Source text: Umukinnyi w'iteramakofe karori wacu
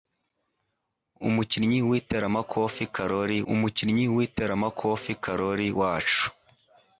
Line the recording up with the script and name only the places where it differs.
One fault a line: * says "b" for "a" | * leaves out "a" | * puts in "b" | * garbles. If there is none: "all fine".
* puts in "umukinnyi w'iteramakofe karori"